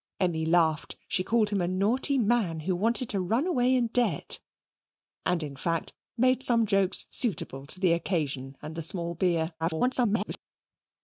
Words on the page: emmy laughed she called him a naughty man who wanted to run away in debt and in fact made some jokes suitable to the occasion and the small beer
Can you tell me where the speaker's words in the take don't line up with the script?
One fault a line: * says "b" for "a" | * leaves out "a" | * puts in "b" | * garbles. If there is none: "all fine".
* garbles